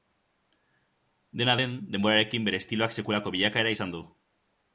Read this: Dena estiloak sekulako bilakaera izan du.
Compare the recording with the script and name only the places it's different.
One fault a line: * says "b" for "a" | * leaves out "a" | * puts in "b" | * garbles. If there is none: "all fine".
* puts in "den denborarekin bere"